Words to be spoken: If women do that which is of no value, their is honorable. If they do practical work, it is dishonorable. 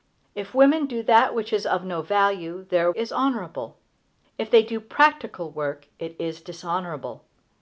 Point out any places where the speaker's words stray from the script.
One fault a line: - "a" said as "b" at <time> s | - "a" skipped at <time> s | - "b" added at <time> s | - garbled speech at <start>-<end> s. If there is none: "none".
none